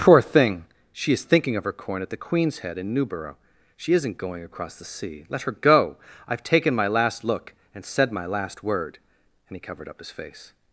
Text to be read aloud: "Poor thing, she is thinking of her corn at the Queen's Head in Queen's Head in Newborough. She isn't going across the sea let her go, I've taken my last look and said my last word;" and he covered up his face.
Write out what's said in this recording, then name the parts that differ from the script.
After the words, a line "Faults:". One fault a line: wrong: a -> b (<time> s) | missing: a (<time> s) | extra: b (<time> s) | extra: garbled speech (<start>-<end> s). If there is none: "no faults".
"Poor thing, she is thinking of her corn at the Queen's Head in Newborough. She isn't going across the sea let her go, I've taken my last look and said my last word;" and he covered up his face.
Faults:
missing: Queen's Head in (2.9 s)